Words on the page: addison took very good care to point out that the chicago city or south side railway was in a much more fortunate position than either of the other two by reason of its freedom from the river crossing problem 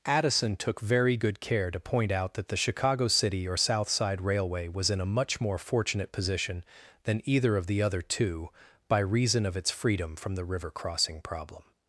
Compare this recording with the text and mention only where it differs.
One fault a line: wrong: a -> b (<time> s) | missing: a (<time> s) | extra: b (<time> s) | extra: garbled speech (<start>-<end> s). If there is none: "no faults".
no faults